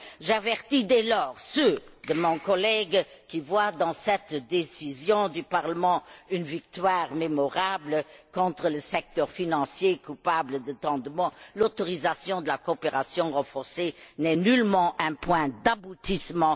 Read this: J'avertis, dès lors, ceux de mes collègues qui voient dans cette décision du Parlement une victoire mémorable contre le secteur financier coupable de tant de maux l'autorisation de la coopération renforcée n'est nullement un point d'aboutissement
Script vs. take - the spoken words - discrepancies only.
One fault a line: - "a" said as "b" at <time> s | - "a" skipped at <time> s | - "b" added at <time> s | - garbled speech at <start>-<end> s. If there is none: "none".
none